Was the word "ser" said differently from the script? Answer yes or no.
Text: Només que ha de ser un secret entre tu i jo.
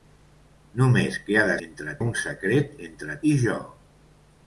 yes